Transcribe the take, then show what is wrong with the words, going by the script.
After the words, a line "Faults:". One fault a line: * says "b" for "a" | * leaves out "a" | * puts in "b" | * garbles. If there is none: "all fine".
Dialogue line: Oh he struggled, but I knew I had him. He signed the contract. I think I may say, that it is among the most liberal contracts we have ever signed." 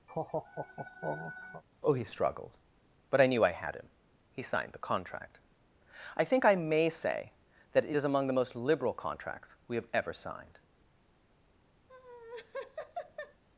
Oh he struggled, but I knew I had him. He signed the contract. I think I may say, that it is among the most liberal contracts we have ever signed."
Faults:
all fine